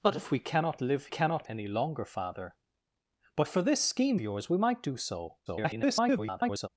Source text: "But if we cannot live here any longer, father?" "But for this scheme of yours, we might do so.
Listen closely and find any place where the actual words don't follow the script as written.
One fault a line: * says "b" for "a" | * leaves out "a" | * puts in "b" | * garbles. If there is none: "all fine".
* says "cannot" for "here"
* leaves out "of"
* garbles